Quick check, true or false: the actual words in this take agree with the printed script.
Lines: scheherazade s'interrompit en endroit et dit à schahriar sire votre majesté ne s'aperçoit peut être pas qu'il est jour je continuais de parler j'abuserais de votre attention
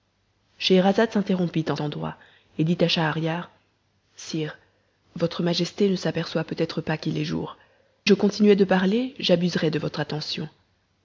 true